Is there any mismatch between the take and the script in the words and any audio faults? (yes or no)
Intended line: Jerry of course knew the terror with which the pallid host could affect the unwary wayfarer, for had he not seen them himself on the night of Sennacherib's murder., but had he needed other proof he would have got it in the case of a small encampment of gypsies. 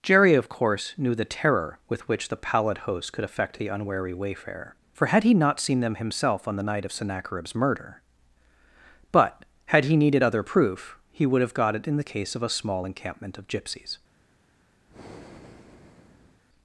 yes